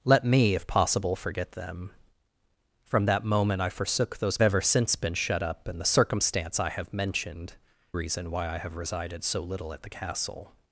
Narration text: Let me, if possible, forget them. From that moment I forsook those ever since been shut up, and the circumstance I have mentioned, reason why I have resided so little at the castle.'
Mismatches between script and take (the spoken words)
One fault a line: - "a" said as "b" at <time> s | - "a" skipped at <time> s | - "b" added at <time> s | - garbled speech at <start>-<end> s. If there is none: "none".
none